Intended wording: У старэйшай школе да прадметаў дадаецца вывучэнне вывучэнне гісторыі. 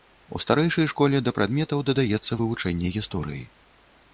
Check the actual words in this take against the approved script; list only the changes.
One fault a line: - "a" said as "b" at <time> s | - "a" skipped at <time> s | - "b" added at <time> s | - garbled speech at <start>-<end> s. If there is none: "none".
- "вывучэнне" skipped at 3.0 s